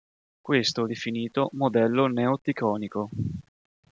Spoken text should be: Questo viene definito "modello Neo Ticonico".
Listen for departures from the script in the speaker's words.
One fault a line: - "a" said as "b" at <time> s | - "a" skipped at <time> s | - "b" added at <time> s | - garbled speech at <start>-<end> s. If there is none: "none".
- "viene" skipped at 0.8 s